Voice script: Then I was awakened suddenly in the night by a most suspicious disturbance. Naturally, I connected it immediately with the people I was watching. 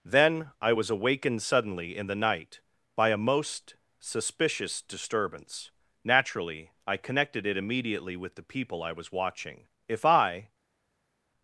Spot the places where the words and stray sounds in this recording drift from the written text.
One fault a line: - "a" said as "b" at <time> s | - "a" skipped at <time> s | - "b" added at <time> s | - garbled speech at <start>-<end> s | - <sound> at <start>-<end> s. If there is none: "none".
- "If I" added at 9.9 s